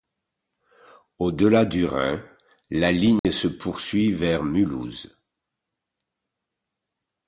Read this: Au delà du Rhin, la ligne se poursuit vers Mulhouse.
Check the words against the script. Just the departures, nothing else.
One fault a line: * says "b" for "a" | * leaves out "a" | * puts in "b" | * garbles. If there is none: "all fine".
all fine